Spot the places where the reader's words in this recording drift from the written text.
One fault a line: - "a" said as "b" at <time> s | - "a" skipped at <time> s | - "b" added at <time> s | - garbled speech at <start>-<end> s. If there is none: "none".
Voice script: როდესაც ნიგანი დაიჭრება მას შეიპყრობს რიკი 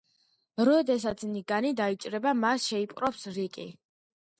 none